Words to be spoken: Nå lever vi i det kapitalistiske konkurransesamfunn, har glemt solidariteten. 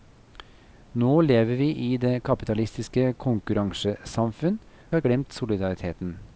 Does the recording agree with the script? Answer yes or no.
yes